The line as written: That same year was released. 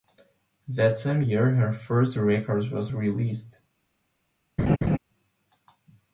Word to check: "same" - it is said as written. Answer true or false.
true